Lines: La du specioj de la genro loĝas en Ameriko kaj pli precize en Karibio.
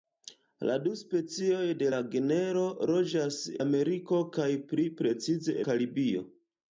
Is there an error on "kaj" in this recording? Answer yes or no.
no